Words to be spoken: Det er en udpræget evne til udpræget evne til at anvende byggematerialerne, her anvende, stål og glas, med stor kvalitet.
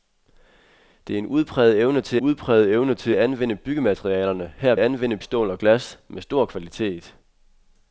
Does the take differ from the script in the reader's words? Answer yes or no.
no